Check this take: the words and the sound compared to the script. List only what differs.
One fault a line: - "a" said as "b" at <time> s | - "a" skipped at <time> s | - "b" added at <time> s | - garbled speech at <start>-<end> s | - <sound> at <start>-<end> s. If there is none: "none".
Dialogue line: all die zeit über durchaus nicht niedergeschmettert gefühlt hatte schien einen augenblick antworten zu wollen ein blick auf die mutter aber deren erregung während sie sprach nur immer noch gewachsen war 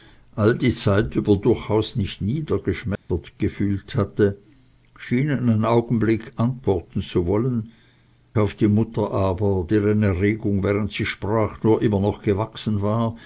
- dropout at 3.0-3.1 s
- "ein blick" skipped at 7.7 s